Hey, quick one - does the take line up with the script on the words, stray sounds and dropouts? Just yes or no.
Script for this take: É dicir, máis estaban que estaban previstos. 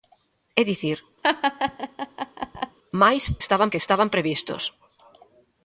no